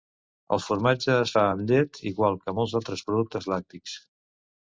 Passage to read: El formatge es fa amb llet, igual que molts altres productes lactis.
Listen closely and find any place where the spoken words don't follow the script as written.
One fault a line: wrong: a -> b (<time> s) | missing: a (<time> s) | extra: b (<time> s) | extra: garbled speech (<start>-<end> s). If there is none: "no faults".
no faults